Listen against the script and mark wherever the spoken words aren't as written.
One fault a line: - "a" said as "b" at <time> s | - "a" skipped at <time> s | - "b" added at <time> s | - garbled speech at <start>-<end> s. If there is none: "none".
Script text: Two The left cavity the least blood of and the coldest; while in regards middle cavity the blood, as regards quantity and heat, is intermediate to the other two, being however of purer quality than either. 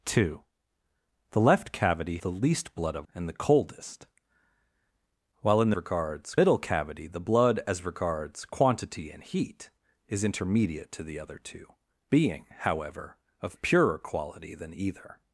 none